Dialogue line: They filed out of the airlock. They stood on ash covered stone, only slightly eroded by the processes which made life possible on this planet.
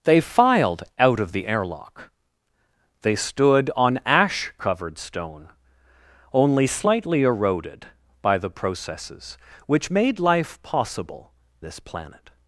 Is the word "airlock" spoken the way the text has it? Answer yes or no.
yes